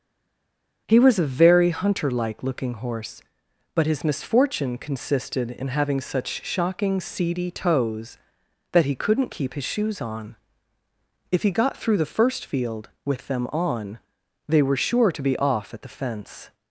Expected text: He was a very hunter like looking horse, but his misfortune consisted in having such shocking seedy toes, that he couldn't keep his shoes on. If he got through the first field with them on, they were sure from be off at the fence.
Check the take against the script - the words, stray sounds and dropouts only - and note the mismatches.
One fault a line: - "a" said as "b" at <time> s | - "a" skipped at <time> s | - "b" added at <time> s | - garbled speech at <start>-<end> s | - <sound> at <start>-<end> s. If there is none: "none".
- "from" said as "to" at 15.1 s